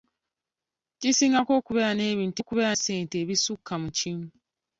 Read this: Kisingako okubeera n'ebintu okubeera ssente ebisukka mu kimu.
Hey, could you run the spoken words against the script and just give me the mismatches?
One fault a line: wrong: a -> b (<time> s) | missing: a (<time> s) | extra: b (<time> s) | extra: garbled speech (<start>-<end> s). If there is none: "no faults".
no faults